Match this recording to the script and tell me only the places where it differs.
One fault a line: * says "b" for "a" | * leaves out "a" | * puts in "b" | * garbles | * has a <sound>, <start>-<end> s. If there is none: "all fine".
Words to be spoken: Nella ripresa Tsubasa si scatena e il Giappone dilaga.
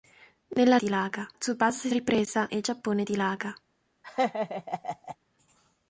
* says "dilaga" for "ripresa"
* says "ripresa" for "scatena"
* has a laugh, 4.0-5.2 s